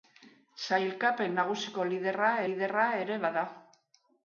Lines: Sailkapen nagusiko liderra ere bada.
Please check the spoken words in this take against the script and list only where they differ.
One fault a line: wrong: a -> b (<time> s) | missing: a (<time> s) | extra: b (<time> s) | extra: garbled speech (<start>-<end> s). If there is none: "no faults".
extra: liderra (2.5 s)